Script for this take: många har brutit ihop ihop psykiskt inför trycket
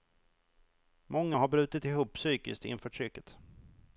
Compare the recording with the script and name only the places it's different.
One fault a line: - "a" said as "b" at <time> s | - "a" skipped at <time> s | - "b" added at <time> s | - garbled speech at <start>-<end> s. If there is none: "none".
- "ihop" skipped at 2.1 s